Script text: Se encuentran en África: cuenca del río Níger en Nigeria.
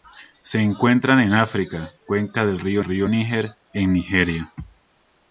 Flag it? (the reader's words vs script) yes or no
yes